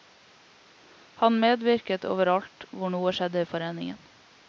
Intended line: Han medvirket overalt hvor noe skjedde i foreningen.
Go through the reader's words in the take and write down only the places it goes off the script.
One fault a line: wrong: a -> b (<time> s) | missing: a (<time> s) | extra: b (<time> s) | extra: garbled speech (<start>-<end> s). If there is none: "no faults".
no faults